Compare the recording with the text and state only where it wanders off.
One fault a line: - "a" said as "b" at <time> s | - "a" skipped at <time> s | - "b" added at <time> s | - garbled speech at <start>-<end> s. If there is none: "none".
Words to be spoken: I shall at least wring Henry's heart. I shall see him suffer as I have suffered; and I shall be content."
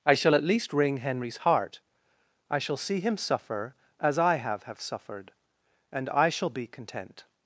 - "have" added at 4.6 s